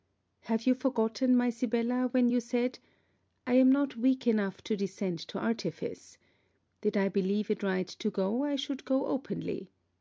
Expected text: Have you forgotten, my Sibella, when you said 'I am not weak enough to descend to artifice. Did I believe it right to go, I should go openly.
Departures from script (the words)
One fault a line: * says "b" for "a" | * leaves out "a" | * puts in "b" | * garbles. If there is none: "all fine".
all fine